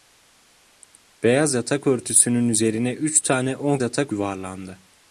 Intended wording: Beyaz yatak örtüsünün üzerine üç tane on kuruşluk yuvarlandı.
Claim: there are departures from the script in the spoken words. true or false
true